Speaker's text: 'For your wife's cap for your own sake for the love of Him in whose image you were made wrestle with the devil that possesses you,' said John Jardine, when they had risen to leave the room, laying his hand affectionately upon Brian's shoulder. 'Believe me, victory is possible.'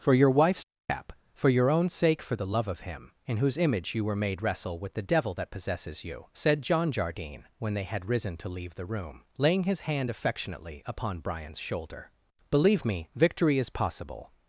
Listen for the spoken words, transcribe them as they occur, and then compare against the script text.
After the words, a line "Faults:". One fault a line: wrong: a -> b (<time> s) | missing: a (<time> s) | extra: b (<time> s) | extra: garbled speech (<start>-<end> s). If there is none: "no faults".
'For your wife's cap for your own sake for the love of Him in whose image you were made wrestle with the devil that possesses you,' said John Jardine, when they had risen to leave the room, laying his hand affectionately upon Brian's shoulder. 'Believe me, victory is possible.'
Faults:
no faults